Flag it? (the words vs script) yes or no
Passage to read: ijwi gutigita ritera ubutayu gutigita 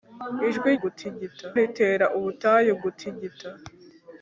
no